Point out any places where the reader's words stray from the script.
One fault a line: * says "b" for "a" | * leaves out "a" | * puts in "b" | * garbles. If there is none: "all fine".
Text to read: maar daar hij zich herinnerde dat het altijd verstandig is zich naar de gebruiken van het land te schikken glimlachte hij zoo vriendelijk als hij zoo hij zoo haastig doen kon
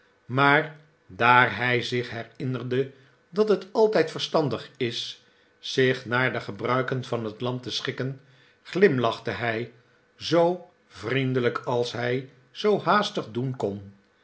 * leaves out "hij zoo"